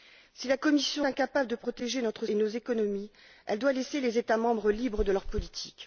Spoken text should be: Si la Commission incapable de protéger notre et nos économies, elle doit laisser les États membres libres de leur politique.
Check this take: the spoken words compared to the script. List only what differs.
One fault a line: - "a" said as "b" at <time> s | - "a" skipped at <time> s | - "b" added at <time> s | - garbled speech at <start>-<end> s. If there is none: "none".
none